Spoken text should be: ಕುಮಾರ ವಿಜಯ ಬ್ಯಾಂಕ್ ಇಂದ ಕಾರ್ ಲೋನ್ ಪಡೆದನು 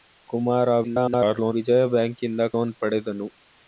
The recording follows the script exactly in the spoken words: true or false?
false